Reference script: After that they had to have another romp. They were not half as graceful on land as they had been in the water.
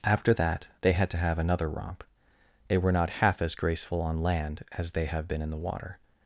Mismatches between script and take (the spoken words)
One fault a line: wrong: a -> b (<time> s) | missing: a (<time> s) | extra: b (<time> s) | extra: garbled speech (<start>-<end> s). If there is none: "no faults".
wrong: had -> have (5.0 s)